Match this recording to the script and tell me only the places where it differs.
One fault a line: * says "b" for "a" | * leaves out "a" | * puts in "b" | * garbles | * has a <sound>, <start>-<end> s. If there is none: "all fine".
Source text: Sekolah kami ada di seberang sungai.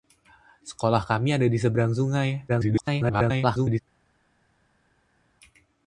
* garbles